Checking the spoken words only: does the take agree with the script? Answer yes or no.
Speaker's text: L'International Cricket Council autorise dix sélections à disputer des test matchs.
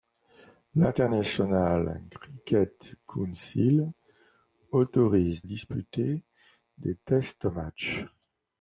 no